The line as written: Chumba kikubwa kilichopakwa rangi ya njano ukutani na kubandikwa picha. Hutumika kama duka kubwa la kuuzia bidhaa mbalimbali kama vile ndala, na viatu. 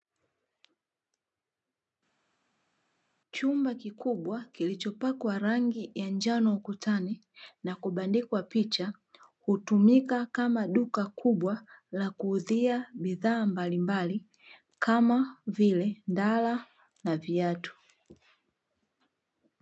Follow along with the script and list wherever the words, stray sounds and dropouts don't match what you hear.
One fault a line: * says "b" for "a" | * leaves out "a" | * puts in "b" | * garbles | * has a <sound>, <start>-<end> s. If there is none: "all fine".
all fine